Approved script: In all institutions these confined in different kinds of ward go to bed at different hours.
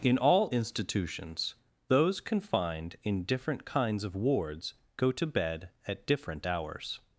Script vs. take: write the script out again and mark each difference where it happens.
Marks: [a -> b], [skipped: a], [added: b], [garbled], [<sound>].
In all institutions [these -> those] confined in different kinds of [ward -> wards] go to bed at different hours.